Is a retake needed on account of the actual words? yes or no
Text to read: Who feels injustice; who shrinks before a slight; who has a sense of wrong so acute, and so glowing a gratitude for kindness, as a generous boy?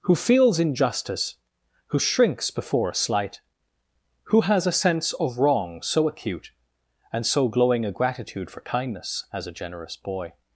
no